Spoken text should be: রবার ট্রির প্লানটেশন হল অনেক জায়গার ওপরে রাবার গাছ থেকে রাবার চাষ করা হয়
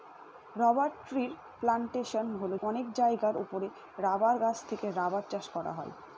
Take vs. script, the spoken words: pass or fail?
pass